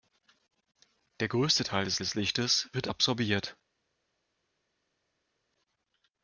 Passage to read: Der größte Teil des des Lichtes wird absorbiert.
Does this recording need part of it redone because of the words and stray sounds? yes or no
no